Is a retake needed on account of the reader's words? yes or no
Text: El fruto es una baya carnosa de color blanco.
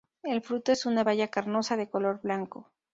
no